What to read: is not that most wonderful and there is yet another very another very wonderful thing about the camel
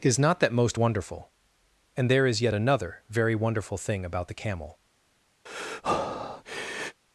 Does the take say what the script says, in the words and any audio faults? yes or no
no